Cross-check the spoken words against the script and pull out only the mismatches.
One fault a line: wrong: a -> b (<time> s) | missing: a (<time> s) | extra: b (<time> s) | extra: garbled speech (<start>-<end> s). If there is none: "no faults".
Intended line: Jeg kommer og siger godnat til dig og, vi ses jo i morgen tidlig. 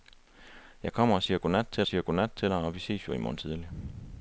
extra: siger godnat til (1.9 s)